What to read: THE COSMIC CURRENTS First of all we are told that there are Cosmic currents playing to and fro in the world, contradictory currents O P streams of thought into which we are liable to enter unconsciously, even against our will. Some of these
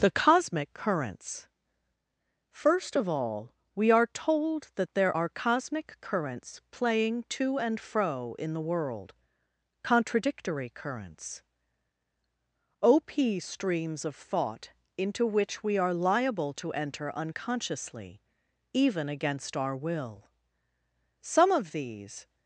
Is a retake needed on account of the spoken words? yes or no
no